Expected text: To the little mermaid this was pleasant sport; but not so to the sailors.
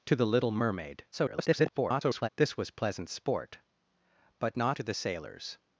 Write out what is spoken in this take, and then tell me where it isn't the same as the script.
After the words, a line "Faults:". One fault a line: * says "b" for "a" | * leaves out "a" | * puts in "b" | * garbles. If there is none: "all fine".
To the little mermaid [garbled] this was pleasant sport; but not to the sailors.
Faults:
* garbles
* leaves out "so"